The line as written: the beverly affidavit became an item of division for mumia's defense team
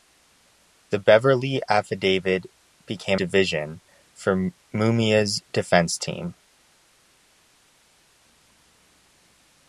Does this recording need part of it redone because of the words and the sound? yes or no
yes